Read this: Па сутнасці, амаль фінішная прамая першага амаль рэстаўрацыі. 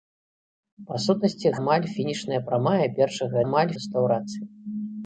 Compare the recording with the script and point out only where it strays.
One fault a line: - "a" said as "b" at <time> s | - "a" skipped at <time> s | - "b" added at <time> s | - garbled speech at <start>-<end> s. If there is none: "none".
none